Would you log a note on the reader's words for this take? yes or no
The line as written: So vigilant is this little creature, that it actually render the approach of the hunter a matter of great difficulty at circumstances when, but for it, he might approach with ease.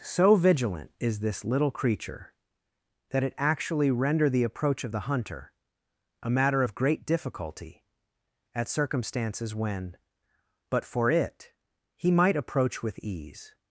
no